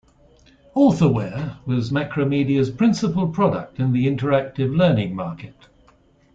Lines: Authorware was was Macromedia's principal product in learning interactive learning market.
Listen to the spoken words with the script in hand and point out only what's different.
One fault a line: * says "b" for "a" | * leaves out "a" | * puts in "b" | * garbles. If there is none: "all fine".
* leaves out "was"
* says "the" for "learning"